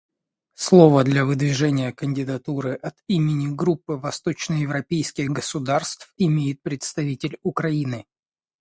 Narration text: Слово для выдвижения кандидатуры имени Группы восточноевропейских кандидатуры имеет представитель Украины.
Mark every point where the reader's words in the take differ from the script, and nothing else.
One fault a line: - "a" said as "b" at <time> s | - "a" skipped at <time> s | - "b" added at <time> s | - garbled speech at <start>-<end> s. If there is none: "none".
- "от" added at 2.7 s
- "кандидатуры" said as "государств" at 5.3 s